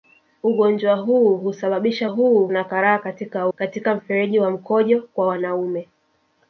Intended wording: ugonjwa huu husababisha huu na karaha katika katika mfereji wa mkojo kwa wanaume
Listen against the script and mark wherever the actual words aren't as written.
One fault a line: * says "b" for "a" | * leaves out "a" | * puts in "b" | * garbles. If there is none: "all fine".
all fine